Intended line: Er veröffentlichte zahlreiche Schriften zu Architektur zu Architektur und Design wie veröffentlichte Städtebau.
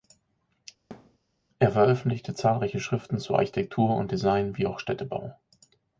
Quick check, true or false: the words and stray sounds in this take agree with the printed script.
false